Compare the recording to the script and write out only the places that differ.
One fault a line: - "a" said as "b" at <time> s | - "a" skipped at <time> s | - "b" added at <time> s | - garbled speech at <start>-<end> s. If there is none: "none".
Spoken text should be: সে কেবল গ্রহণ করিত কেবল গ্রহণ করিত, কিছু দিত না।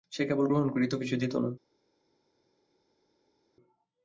- "কেবল গ্রহণ করিত" skipped at 0.9 s